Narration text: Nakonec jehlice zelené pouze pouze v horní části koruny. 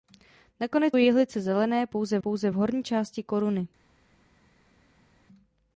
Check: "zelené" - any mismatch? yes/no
no